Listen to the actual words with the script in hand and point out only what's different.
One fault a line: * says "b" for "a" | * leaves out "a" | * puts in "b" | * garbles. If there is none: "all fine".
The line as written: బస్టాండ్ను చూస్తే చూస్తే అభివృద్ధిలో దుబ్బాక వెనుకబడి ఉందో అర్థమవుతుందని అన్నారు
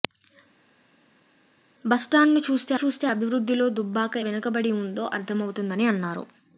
all fine